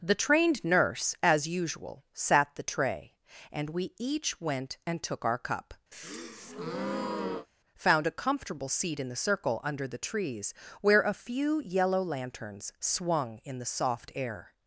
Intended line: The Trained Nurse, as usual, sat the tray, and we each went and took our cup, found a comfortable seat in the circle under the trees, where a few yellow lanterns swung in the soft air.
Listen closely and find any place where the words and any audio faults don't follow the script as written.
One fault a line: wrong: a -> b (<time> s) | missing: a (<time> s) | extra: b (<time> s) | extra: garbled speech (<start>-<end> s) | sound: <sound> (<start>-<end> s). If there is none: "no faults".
sound: breath (5.9-7.5 s)